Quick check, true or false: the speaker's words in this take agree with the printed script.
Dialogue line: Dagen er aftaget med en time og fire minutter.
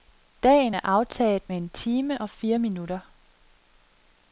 true